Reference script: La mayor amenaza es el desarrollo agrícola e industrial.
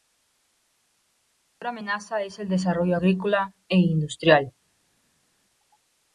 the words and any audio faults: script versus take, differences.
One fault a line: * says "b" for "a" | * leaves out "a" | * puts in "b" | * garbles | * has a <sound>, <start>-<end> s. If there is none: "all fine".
all fine